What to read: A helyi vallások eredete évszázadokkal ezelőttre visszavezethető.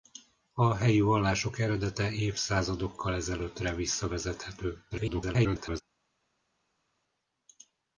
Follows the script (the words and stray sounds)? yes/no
no